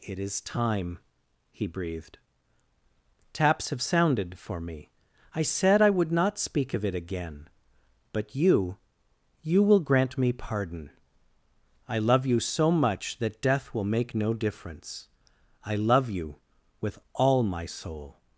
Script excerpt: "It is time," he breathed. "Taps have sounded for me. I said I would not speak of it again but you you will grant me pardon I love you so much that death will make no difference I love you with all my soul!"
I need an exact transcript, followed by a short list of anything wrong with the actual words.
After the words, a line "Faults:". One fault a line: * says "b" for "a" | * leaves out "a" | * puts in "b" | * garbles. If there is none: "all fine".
"It is time," he breathed. "Taps have sounded for me. I said I would not speak of it again but you you will grant me pardon I love you so much that death will make no difference I love you with all my soul!"
Faults:
all fine